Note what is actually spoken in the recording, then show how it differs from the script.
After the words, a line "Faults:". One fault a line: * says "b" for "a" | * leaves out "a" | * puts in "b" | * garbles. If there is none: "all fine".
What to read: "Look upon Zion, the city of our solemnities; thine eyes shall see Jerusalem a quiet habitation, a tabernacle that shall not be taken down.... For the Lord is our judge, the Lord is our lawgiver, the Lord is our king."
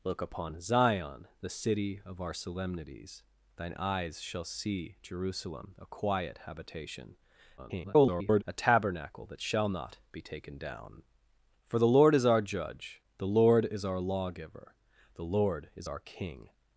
"Look upon Zion, the city of our solemnities; thine eyes shall see Jerusalem a quiet habitation, [garbled] a tabernacle that shall not be taken down.... For the Lord is our judge, the Lord is our lawgiver, the Lord is our king."
Faults:
* garbles